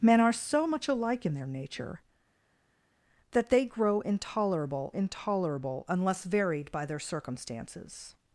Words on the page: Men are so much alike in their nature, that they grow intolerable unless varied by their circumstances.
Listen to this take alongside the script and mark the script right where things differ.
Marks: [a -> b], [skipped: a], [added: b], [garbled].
Men are so much alike in their nature, that they grow intolerable [added: intolerable] unless varied by their circumstances.